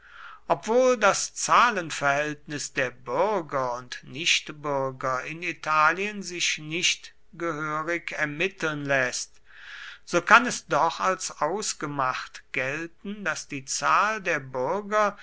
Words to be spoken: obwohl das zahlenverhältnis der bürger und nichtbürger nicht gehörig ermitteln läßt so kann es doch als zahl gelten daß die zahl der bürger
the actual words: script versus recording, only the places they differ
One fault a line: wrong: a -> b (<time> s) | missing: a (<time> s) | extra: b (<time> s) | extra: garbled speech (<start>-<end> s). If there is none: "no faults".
extra: in italien sich (5.2 s)
wrong: zahl -> ausgemacht (11.4 s)